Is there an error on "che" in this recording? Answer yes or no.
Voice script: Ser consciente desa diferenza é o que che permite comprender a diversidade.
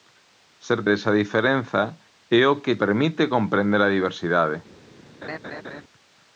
yes